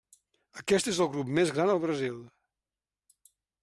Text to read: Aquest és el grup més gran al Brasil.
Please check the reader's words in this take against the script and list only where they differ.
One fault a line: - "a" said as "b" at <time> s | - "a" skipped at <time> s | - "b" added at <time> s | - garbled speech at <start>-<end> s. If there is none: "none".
none